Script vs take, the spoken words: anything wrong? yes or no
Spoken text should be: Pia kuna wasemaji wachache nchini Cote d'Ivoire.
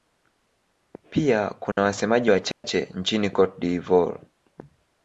no